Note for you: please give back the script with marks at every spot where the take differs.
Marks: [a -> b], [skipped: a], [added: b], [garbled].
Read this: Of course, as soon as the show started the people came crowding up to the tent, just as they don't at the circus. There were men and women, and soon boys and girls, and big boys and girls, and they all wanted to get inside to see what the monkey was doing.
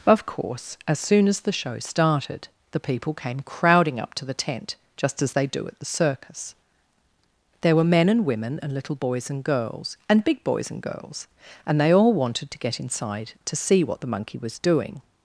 Of course, as soon as the show started the people came crowding up to the tent, just as they [don't -> do] at the circus. There were men and women, and [soon -> little] boys and girls, and big boys and girls, and they all wanted to get inside to see what the monkey was doing.